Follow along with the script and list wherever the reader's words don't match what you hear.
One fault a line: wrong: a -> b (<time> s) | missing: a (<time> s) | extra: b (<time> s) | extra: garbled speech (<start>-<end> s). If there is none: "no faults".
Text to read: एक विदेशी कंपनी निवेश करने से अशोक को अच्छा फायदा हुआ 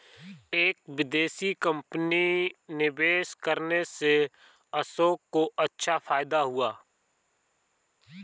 no faults